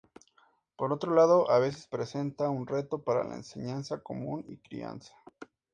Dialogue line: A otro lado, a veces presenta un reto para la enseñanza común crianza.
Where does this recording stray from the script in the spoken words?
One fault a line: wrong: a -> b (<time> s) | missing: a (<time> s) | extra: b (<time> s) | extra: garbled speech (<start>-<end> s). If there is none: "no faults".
wrong: A -> Por (0.8 s)
extra: y (4.5 s)